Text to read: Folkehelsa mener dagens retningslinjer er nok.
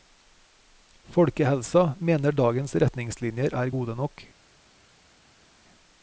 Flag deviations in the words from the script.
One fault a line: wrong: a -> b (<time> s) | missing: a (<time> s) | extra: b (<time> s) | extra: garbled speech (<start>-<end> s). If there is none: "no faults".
extra: gode (3.7 s)